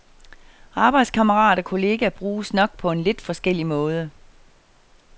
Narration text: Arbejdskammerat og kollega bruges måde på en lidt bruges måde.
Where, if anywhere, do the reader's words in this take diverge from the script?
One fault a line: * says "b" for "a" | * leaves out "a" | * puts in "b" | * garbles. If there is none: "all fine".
* says "nok" for "måde"
* says "forskellig" for "bruges"